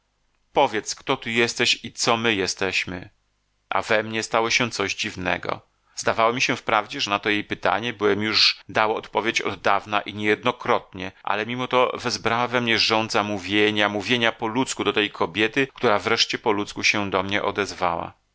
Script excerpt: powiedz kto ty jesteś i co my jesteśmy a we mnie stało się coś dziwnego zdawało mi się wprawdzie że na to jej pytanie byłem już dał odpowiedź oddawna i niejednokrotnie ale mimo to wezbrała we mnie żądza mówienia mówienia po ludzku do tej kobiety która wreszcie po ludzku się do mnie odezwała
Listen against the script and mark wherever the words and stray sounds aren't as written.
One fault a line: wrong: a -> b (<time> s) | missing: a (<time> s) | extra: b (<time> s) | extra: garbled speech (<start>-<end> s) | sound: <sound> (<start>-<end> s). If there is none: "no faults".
no faults